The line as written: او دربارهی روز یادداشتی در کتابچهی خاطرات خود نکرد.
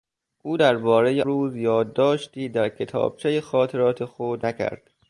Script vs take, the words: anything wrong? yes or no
no